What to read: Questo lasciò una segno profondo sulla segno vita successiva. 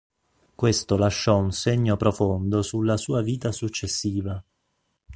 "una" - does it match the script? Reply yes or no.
no